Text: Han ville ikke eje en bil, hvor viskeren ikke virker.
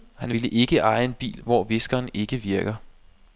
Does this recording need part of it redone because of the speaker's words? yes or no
no